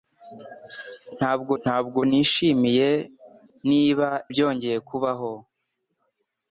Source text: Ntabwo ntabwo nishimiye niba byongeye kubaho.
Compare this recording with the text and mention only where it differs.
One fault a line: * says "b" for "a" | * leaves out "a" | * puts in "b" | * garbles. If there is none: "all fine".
all fine